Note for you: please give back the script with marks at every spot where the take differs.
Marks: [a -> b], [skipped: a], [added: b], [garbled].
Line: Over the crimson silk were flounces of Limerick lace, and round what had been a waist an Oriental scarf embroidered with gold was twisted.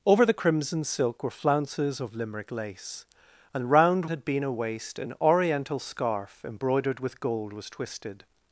Over the crimson silk were flounces of Limerick lace, and round [skipped: what] had been a waist an Oriental scarf embroidered with gold was twisted.